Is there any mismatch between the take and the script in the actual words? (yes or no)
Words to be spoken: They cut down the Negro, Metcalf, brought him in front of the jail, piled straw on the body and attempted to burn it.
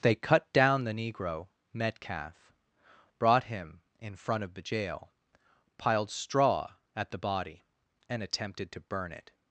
yes